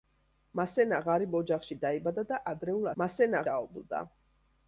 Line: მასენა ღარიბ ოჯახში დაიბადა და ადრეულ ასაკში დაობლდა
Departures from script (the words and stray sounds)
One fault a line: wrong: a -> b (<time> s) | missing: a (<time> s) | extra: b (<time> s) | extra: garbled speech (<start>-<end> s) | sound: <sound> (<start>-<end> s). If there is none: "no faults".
wrong: ასაკში -> მასენა (3.0 s)